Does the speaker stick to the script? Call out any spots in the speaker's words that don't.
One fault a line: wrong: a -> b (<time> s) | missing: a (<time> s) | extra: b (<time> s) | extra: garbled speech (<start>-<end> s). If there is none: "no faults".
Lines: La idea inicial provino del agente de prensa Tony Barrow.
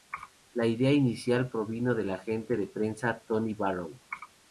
no faults